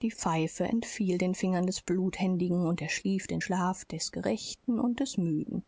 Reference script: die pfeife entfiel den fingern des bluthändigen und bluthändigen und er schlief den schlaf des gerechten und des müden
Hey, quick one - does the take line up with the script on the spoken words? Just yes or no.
no